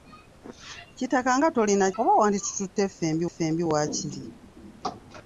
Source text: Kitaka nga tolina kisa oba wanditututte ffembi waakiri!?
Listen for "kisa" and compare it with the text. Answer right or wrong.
wrong